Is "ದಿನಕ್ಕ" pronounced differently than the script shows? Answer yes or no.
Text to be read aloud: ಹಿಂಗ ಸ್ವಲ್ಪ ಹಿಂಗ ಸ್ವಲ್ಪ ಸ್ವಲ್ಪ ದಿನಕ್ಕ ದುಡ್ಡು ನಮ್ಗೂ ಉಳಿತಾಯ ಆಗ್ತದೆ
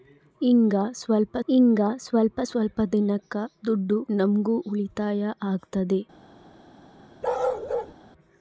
no